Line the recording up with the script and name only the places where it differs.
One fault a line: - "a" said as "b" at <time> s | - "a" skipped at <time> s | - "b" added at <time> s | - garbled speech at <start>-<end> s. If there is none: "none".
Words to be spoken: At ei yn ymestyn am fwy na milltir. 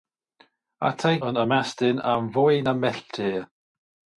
none